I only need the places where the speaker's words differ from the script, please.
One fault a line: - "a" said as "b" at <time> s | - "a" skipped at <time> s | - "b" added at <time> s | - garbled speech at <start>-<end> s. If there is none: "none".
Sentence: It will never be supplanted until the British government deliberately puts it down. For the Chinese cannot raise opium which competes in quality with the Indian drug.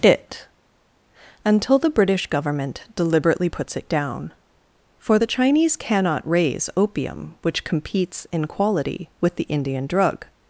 - "will never be supplanted" skipped at 0.5 s